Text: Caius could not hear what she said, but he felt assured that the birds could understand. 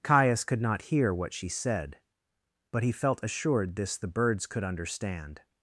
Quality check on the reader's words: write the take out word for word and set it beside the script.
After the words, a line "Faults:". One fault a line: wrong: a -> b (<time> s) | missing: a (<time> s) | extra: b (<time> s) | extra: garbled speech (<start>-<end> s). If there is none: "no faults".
Caius could not hear what she said, but he felt assured this the birds could understand.
Faults:
wrong: that -> this (3.7 s)